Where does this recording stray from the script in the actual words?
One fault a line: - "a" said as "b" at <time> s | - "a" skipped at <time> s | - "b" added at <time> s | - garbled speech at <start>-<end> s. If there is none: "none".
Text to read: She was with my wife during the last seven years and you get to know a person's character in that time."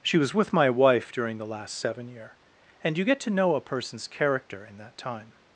- "years" said as "year" at 2.1 s